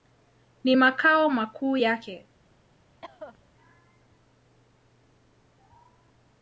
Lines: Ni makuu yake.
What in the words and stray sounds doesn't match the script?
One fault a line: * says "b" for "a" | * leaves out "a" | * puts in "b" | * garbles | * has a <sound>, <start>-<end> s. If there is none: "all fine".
* puts in "makao"
* has a cough, 3.0-3.5 s